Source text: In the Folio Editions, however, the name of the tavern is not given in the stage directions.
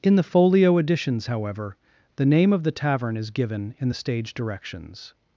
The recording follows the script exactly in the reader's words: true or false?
false